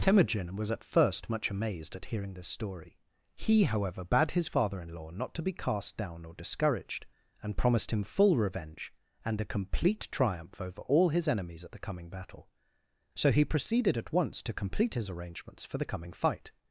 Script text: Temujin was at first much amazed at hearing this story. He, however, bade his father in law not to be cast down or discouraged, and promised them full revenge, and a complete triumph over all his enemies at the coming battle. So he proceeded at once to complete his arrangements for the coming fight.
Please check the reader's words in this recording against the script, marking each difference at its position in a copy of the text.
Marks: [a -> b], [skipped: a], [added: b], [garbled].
Temujin was at first much amazed at hearing this story. He, however, bade his father in law not to be cast down or discouraged, and promised [them -> him] full revenge, and a complete triumph over all his enemies at the coming battle. So he proceeded at once to complete his arrangements for the coming fight.